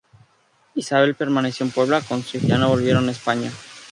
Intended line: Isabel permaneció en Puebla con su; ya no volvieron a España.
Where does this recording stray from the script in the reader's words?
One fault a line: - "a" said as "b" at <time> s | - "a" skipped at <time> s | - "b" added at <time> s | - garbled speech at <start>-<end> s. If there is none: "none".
none